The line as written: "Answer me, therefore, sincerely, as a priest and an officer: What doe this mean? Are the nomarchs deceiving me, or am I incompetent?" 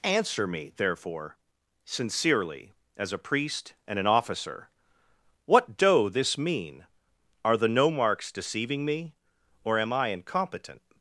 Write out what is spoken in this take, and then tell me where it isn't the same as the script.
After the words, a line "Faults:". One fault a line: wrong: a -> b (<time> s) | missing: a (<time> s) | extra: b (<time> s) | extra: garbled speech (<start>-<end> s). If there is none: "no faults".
"Answer me, therefore, sincerely, as a priest and an officer: What doe this mean? Are the nomarchs deceiving me, or am I incompetent?"
Faults:
no faults